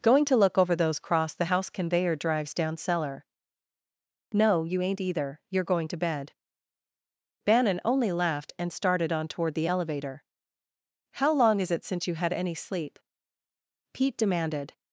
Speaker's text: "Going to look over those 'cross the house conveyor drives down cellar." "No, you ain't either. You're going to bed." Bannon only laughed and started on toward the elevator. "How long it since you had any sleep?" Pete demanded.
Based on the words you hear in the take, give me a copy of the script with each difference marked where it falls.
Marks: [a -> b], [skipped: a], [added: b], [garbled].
"Going to look over those 'cross the house conveyor drives down cellar." "No, you ain't either. You're going to bed." Bannon only laughed and started on toward the elevator. "How long [added: is] it since you had any sleep?" Pete demanded.